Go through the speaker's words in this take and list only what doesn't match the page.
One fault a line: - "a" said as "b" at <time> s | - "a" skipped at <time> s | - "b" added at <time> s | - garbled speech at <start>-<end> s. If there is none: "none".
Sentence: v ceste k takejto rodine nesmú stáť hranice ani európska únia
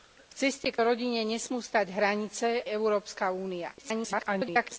- "takejto" skipped at 0.8 s
- "ani" skipped at 2.5 s
- garbled speech at 3.8-4.8 s